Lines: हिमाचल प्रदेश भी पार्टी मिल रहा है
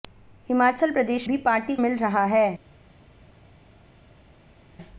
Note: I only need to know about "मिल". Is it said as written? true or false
true